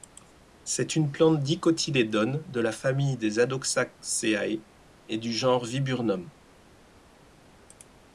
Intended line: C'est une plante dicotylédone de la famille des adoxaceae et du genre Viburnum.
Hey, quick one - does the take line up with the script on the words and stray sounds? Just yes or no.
yes